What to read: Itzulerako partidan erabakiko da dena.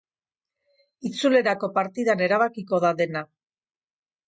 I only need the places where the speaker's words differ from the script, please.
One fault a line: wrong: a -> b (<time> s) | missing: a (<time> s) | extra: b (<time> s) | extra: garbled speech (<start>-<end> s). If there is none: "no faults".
no faults